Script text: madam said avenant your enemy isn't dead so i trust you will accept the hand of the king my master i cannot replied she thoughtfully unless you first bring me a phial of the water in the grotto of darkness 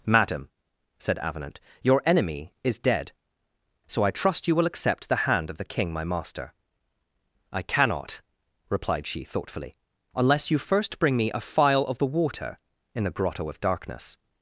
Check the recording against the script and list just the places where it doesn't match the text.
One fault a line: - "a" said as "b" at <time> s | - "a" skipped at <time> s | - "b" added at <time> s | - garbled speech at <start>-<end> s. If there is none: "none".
- "isn't" said as "is" at 2.6 s